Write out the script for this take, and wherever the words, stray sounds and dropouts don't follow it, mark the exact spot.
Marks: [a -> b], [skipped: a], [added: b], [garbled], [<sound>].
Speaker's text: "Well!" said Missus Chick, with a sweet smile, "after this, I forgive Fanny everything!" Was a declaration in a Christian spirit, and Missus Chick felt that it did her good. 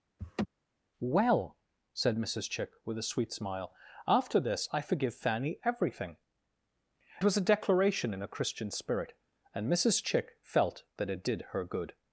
[laugh] "Well!" said Missus Chick, with a sweet smile, "after this, I forgive Fanny everything!" Was a declaration in a Christian spirit, and Missus Chick felt that it did her good.